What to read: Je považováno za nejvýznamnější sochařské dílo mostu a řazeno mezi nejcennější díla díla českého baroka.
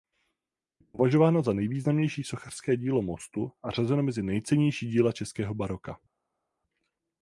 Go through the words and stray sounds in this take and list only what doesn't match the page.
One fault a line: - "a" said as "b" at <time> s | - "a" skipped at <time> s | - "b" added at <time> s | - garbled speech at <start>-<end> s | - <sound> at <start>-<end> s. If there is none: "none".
- "díla" skipped at 5.1 s